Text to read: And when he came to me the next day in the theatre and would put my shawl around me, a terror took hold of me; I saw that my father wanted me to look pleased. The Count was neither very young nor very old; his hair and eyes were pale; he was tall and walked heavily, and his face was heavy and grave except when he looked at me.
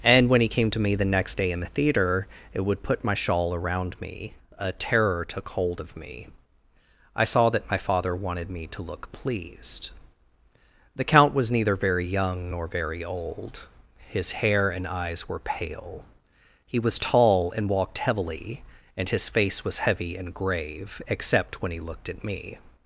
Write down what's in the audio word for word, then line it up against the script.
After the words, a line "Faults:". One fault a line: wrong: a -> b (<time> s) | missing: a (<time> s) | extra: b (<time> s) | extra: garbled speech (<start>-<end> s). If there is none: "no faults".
And when he came to me the next day in the theater it would put my shawl around me, a terror took hold of me; I saw that my father wanted me to look pleased. The Count was neither very young nor very old; his hair and eyes were pale; he was tall and walked heavily, and his face was heavy and grave except when he looked at me.
Faults:
wrong: theatre and -> theater it (1.7 s)